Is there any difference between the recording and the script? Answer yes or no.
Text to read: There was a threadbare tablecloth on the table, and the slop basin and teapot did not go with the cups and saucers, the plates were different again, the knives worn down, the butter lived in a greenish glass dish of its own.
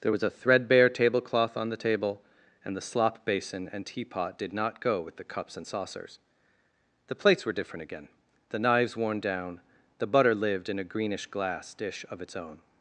no